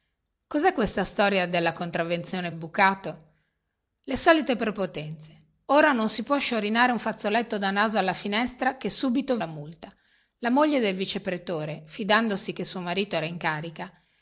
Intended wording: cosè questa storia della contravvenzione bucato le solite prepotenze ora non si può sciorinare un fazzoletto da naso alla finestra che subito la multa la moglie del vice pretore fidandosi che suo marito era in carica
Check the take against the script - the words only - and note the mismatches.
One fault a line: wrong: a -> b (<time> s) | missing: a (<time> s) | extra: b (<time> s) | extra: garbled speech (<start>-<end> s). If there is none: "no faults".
no faults